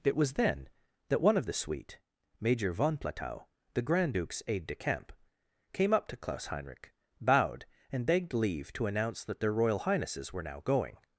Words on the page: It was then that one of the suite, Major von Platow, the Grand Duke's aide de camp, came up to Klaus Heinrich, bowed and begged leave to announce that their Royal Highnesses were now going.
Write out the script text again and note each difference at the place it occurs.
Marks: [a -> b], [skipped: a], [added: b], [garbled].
It was then that one of the suite, Major von Platow, the Grand Duke's aide de camp, came up to Klaus Heinrich, bowed and begged leave to announce that their Royal Highnesses were now going.